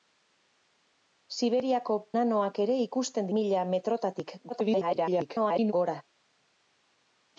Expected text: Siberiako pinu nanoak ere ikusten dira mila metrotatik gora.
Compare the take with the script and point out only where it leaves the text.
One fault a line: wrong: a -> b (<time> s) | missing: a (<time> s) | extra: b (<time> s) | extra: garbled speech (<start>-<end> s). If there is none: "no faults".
missing: pinu (2.0 s)
missing: dira (3.3 s)
extra: garbled speech (4.5-5.7 s)